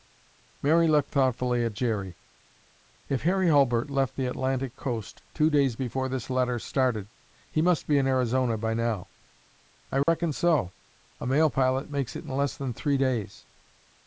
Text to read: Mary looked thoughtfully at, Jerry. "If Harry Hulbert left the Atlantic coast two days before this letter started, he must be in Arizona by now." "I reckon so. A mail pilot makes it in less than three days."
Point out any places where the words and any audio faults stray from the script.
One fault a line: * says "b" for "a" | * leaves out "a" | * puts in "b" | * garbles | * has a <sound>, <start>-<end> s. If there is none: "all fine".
* has a dropout, 10.0-10.1 s